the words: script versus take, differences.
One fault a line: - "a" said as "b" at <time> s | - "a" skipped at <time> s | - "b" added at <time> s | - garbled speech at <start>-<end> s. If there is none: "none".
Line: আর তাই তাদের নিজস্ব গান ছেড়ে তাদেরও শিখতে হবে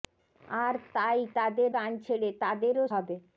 - "নিজস্ব" skipped at 1.7 s
- "শিখতে" skipped at 2.8 s